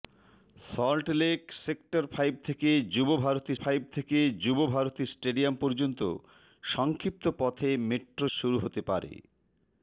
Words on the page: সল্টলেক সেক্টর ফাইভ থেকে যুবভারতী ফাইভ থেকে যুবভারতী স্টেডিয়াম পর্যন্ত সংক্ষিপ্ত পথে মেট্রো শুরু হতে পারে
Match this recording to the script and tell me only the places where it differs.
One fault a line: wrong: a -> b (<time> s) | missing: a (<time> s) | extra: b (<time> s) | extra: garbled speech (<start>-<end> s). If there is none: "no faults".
no faults